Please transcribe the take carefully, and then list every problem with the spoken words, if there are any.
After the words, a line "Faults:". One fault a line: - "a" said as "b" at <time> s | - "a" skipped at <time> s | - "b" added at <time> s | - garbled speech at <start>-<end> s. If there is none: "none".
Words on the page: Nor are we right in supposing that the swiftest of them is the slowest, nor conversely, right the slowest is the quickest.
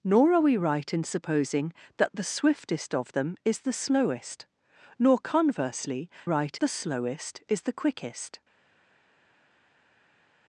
Nor are we right in supposing that the swiftest of them is the slowest, nor conversely, right the slowest is the quickest.
Faults:
none